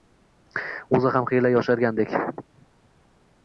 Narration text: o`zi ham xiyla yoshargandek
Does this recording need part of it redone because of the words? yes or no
no